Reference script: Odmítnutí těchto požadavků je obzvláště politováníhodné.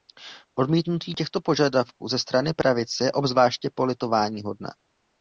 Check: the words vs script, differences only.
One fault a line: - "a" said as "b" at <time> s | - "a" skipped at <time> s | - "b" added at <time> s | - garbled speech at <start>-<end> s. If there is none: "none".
- "ze strany pravice" added at 2.1 s